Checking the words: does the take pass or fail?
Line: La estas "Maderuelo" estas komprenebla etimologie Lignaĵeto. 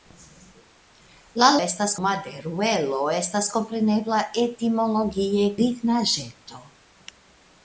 pass